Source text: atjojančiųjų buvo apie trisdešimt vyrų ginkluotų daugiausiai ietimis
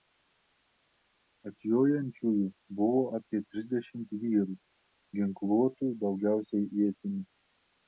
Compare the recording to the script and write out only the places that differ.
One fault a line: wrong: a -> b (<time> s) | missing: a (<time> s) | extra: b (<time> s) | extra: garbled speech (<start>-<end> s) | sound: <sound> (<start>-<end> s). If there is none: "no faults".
no faults